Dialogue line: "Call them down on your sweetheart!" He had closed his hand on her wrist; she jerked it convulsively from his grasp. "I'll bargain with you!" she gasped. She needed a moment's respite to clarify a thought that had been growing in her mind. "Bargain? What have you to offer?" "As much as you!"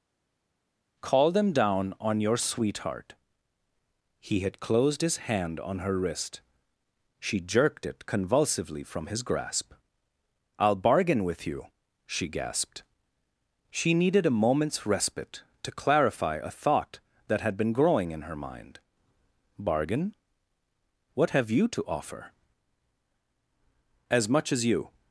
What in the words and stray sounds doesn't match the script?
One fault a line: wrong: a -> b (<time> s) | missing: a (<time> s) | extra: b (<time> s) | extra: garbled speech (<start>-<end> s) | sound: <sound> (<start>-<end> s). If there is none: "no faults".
no faults